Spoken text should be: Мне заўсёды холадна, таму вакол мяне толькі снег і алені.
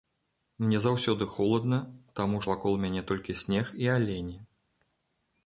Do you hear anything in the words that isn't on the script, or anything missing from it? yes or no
no